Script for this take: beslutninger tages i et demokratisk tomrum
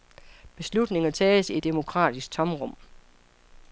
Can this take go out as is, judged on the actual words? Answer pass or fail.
pass